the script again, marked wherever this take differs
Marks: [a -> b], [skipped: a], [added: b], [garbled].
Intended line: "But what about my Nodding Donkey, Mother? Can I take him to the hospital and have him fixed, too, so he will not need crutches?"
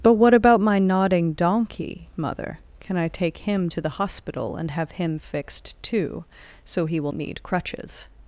"But what about my Nodding Donkey, Mother? Can I take him to the hospital and have him fixed, too, so he will [skipped: not] need crutches?"